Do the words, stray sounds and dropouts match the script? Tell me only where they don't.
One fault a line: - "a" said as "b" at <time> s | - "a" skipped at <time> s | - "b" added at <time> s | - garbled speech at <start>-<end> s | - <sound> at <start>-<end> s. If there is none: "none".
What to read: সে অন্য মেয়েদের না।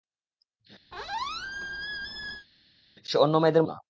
- squeak at 0.9-2.5 s